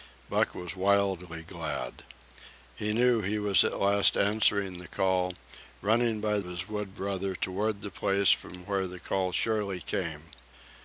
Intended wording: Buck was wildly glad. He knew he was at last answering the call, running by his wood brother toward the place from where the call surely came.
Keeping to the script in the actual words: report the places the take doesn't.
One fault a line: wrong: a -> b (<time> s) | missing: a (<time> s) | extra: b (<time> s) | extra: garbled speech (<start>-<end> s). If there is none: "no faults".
no faults